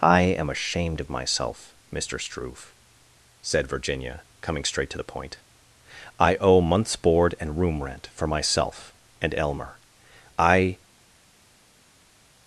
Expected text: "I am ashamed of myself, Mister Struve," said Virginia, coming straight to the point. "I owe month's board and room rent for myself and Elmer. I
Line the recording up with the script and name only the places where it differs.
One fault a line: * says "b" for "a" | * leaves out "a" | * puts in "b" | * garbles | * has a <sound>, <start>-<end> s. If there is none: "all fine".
all fine